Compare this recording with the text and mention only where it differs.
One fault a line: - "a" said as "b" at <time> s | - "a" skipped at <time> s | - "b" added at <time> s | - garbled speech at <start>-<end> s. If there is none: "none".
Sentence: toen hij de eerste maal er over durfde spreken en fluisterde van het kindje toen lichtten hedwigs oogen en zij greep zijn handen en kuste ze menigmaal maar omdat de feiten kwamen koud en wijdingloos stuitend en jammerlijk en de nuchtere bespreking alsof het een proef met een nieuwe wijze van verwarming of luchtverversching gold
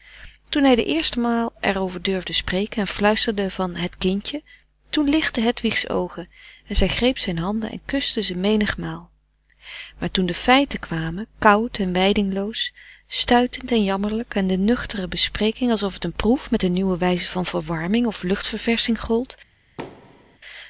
- "omdat" said as "toen" at 10.1 s